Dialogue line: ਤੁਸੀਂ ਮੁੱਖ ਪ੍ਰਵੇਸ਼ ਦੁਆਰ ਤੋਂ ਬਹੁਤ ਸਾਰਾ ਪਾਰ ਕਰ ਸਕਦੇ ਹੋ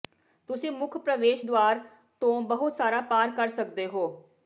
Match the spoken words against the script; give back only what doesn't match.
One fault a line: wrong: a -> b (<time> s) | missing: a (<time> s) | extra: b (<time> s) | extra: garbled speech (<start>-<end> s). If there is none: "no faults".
no faults